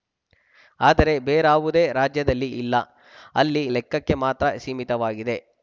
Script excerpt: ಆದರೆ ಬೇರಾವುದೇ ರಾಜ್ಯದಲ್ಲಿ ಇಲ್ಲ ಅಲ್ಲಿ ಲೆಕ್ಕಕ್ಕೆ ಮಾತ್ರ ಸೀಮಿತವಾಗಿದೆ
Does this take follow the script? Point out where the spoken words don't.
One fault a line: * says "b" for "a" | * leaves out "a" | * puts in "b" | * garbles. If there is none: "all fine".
all fine